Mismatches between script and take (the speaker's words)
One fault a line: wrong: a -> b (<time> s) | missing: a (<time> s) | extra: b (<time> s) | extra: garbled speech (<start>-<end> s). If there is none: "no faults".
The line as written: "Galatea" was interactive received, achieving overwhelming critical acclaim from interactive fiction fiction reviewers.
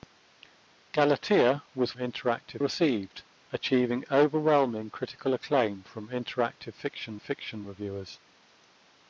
no faults